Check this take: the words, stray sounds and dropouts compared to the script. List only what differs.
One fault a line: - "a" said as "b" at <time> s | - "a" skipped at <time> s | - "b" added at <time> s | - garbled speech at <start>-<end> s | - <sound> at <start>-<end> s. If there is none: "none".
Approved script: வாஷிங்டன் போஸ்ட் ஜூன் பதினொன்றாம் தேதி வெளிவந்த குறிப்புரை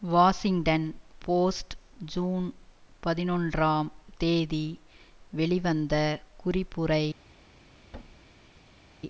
- thud at 7.9-8.9 s